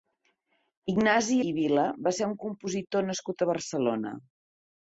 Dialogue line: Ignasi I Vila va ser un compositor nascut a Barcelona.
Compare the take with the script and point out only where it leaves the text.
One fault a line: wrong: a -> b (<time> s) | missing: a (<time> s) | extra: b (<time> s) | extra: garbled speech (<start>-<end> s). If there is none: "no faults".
no faults